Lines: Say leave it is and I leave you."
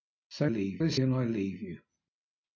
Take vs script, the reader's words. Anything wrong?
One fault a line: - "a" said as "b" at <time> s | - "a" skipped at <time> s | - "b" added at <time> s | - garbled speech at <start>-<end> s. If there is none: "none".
none